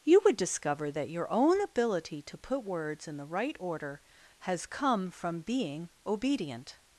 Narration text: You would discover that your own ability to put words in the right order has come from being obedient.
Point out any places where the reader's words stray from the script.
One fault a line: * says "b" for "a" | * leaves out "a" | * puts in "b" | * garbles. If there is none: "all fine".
all fine